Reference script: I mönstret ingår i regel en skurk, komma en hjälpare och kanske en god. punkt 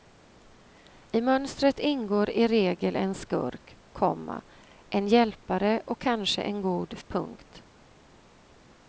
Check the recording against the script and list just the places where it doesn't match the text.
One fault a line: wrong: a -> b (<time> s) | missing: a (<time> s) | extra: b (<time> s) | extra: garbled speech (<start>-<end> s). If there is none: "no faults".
no faults